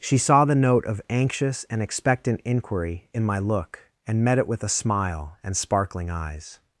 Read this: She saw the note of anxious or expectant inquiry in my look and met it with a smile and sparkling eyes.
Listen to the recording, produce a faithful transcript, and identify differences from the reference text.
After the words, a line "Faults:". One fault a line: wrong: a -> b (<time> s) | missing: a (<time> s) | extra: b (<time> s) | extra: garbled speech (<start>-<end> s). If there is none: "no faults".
She saw the note of anxious and expectant inquiry in my look and met it with a smile and sparkling eyes.
Faults:
wrong: or -> and (1.7 s)